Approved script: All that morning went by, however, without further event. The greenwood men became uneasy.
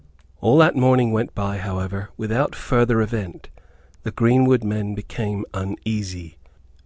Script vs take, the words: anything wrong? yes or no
no